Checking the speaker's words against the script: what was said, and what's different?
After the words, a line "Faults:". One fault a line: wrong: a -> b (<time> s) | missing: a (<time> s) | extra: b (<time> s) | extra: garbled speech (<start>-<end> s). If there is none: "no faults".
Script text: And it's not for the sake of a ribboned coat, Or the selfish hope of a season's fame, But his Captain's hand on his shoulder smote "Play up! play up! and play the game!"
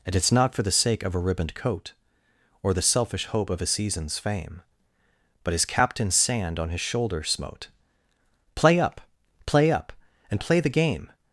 And it's not for the sake of a ribboned coat, Or the selfish hope of a season's fame, But his Captain's sand on his shoulder smote "Play up! play up! and play the game!"
Faults:
wrong: hand -> sand (6.2 s)